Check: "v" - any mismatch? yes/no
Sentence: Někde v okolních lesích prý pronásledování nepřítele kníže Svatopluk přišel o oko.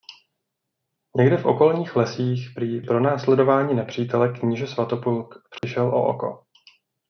no